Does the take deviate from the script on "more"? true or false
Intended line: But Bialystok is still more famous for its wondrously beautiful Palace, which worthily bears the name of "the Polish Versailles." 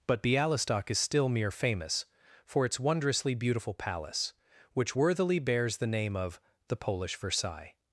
true